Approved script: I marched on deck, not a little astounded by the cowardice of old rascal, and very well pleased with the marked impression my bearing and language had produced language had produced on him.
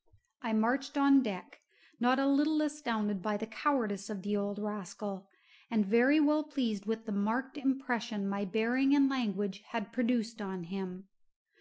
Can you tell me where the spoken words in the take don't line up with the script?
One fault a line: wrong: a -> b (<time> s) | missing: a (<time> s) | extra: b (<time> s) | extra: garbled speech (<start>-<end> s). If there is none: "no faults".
extra: the (4.2 s)
missing: language had produced (10.4 s)